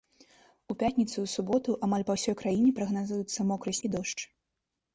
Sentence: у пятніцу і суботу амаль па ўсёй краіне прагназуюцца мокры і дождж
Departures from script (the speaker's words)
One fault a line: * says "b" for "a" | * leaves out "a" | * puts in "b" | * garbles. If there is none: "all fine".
all fine